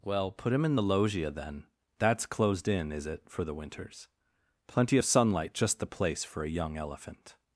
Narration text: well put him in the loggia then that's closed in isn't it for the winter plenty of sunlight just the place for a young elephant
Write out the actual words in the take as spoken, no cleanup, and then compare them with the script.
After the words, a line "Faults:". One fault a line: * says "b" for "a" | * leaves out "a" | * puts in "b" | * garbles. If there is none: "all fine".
well put him in the loggia then that's closed in is it for the winters plenty of sunlight just the place for a young elephant
Faults:
* says "is" for "isn't"
* says "winters" for "winter"